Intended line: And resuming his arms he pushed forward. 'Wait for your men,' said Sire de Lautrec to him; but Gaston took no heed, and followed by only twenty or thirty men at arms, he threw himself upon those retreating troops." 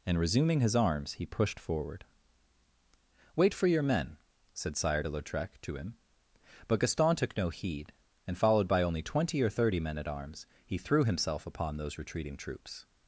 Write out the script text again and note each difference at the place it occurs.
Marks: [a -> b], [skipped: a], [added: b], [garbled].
And resuming his arms he pushed forward. 'Wait for your men,' said Sire de Lautrec to him; but Gaston took no heed, and followed by only twenty or thirty men at arms, he threw himself upon those retreating troops."